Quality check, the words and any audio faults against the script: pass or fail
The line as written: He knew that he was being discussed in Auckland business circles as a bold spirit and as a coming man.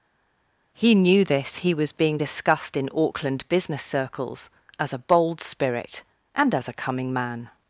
fail